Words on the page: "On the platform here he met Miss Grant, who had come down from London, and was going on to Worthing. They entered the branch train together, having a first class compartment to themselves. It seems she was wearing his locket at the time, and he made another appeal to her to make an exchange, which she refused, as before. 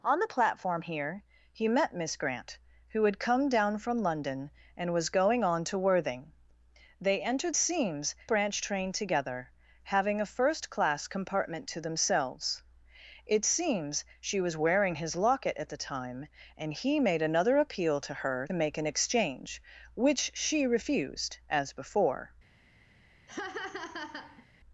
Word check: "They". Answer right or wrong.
right